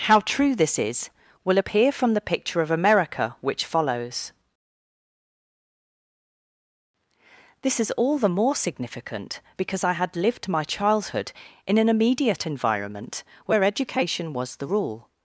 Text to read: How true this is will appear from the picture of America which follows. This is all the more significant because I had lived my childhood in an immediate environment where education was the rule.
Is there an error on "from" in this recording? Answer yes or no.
no